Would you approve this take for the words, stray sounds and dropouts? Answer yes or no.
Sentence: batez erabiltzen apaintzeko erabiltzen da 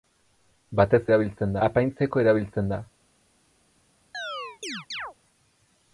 no